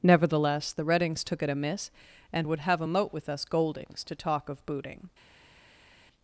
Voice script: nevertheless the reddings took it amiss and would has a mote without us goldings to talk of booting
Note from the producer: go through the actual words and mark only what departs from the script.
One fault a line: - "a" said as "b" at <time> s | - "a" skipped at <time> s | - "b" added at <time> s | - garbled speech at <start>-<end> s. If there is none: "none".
- "has" said as "have" at 2.6 s
- "without" said as "with" at 3.1 s